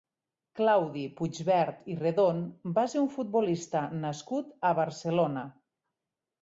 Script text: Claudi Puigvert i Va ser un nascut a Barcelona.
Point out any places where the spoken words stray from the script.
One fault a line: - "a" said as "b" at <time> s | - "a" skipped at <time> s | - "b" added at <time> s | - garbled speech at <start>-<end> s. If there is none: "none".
- "Redon" added at 2.0 s
- "futbolista" added at 3.2 s